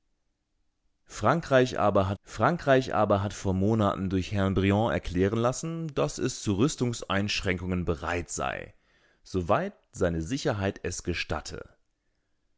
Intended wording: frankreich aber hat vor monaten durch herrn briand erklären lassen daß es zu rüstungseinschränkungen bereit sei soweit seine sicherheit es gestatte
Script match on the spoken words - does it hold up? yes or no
no